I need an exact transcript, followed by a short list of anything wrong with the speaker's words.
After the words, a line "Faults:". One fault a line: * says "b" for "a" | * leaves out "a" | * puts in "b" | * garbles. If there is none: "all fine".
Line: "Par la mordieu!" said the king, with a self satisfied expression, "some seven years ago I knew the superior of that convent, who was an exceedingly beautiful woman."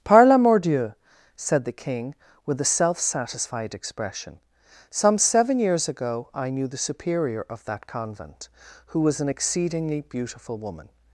"Par la mordieu!" said the king, with a self satisfied expression, "some seven years ago I knew the superior of that convent, who was an exceedingly beautiful woman."
Faults:
all fine